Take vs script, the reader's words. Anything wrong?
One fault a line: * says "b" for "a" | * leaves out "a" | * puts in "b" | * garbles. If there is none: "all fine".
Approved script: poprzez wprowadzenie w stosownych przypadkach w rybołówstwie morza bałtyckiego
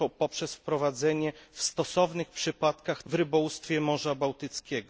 all fine